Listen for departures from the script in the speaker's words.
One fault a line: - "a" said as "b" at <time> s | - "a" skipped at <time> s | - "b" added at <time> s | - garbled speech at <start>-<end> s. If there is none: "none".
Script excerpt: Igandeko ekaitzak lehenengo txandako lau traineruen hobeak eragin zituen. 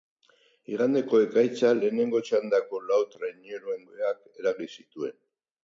none